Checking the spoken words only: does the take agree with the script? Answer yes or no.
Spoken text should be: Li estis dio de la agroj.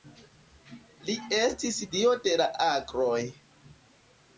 yes